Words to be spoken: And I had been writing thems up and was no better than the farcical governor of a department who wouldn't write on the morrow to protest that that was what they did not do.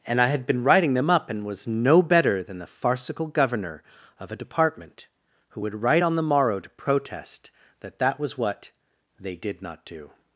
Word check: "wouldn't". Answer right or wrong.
wrong